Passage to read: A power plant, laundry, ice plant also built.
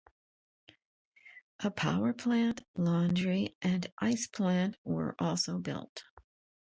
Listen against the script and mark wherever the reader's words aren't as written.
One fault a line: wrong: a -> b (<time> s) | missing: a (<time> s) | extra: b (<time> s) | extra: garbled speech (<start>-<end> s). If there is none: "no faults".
extra: and (3.6 s)
extra: were (4.8 s)